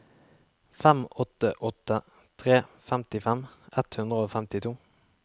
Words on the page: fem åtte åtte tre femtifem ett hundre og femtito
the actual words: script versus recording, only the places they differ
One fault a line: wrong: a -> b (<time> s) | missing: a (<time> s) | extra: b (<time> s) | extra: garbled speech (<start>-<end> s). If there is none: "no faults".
no faults